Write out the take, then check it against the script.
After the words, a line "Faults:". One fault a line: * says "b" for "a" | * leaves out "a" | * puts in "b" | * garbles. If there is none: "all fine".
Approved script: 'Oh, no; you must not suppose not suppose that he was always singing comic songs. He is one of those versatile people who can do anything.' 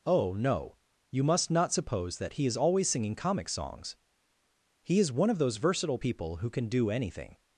'Oh, no; you must not suppose that he is always singing comic songs. He is one of those versatile people who can do anything.'
Faults:
* leaves out "not suppose"
* says "is" for "was"